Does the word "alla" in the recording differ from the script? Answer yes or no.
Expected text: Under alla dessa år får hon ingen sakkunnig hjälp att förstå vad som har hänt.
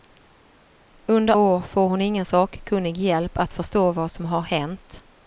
yes